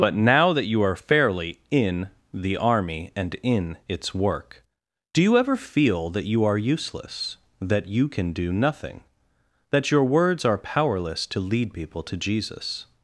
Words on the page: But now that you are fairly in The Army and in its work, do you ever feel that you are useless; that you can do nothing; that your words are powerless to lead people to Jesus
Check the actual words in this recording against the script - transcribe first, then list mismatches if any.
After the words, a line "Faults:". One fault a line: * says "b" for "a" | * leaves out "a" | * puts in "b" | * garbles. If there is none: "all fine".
But now that you are fairly in The Army and in its work, do you ever feel that you are useless; that you can do nothing; that your words are powerless to lead people to Jesus
Faults:
all fine